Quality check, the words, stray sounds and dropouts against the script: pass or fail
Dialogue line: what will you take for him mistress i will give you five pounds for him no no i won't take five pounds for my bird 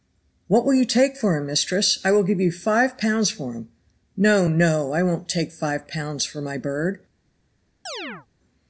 fail